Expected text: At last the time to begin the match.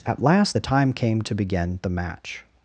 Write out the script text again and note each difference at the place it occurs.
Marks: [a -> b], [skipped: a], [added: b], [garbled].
At last the time [added: came] to begin the match.